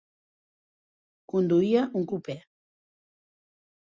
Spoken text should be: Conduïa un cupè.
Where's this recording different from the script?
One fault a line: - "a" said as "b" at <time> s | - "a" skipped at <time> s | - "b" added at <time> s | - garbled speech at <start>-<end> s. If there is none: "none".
none